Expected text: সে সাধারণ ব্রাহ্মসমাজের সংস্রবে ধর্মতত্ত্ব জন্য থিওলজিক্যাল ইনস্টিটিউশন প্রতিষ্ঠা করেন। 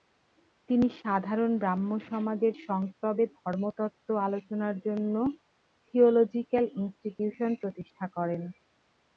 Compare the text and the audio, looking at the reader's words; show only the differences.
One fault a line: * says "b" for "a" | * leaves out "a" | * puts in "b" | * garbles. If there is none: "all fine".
* says "তিনি" for "সে"
* puts in "আলোচনার"